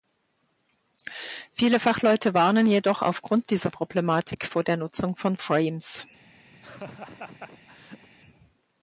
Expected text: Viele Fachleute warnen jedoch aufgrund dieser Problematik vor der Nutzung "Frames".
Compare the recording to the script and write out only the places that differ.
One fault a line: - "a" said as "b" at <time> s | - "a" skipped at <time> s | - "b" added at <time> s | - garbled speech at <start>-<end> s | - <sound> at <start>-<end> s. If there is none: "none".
- "von" added at 5.2 s
- laugh at 6.5-8.1 s